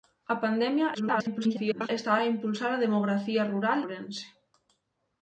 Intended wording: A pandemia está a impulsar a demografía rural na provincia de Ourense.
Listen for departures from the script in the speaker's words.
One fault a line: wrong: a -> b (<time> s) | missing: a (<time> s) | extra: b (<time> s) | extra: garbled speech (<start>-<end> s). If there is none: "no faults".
extra: garbled speech (0.9-1.9 s)
missing: na provincia de (3.8 s)